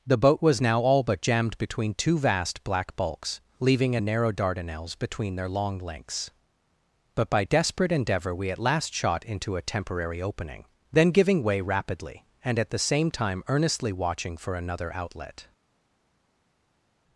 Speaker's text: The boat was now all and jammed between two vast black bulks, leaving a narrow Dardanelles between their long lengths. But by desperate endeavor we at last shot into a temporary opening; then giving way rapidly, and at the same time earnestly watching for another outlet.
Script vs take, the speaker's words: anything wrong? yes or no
yes